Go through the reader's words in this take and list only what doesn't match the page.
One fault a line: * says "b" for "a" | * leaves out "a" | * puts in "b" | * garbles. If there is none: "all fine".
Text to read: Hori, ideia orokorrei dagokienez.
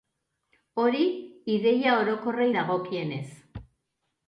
all fine